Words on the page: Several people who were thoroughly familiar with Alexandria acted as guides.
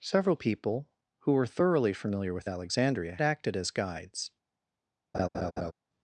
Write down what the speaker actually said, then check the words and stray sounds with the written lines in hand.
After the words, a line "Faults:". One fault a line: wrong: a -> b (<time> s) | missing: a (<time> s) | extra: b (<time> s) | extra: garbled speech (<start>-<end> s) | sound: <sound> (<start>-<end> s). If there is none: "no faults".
Several people who were thoroughly familiar with Alexandria acted as guides.
Faults:
sound: laugh (5.1-5.7 s)